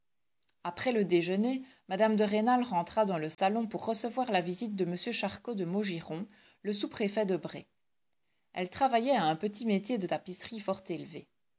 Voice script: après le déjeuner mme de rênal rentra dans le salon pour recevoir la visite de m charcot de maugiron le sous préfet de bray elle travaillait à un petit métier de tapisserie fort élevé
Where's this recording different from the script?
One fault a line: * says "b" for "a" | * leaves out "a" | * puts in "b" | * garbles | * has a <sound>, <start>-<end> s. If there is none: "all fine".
* has a dropout, 3.3-3.4 s